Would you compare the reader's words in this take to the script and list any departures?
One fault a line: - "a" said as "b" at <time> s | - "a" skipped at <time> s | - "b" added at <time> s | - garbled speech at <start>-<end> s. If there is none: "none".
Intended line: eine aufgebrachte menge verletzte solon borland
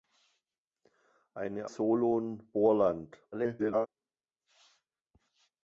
- "aufgebrachte menge verletzte" skipped at 1.7 s
- garbled speech at 3.3-3.9 s